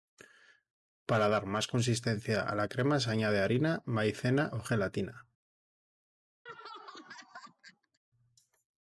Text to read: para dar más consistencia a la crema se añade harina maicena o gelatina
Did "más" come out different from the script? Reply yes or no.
no